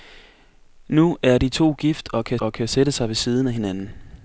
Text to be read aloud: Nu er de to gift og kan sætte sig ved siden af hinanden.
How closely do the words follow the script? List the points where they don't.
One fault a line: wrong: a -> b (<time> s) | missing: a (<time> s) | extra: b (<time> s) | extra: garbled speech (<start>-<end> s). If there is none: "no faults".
extra: og kan (2.4 s)